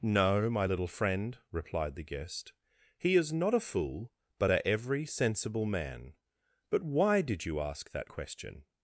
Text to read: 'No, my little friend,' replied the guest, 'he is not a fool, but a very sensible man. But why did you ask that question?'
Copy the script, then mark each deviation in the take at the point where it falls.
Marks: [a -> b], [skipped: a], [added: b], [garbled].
'No, my little friend,' replied the guest, 'he is not a fool, but a [very -> every] sensible man. But why did you ask that question?'